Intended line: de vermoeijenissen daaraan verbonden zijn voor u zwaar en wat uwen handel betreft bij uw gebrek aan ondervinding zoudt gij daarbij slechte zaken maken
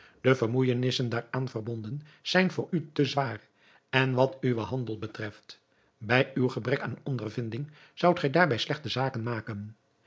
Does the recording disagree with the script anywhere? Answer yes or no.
yes